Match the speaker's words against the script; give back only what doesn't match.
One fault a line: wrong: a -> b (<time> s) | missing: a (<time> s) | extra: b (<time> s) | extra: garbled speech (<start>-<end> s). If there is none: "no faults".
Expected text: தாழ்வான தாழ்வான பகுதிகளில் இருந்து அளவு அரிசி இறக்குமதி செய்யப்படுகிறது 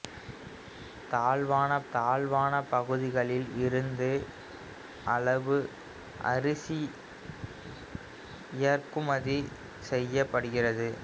no faults